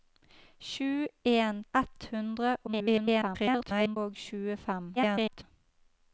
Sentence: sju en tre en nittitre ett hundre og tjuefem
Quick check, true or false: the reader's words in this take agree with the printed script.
false